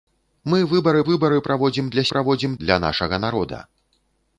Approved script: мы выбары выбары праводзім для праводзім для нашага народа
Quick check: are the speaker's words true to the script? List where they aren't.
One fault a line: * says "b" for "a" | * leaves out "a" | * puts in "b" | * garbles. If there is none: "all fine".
all fine